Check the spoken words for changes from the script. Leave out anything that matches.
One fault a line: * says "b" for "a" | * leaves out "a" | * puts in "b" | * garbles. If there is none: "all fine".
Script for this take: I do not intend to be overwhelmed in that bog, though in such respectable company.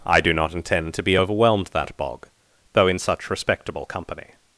* leaves out "in"